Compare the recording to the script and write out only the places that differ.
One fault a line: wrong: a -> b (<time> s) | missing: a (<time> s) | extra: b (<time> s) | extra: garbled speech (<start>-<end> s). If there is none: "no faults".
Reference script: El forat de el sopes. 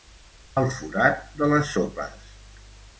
wrong: el -> les (1.6 s)